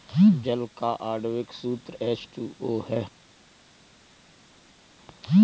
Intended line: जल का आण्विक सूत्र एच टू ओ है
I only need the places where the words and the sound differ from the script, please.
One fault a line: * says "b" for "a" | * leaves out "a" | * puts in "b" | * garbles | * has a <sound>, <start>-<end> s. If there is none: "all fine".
all fine